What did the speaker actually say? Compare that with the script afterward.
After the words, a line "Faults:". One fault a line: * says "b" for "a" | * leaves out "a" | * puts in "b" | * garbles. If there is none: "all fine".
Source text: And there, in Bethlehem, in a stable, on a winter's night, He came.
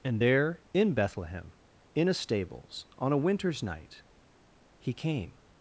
And there, in Bethlehem, in a stables, on a winter's night, He came.
Faults:
* says "stables" for "stable"